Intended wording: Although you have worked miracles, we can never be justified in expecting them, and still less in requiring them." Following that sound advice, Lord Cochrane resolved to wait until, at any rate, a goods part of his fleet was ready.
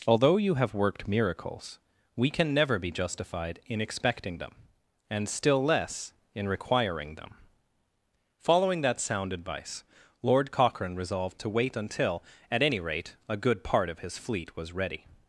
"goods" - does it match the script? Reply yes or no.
no